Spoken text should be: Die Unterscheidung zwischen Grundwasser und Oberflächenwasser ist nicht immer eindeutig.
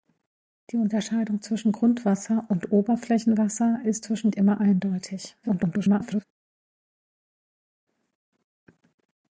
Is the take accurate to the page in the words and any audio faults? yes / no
no